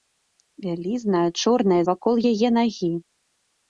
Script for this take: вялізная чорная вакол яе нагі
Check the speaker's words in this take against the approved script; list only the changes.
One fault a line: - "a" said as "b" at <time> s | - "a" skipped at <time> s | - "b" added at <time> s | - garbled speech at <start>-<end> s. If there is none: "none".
none